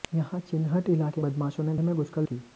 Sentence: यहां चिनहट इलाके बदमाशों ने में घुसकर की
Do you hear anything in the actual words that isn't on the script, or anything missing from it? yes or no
no